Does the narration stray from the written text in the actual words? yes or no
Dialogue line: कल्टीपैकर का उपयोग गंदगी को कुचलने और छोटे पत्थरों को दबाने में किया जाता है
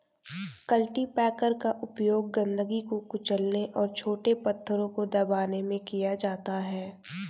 no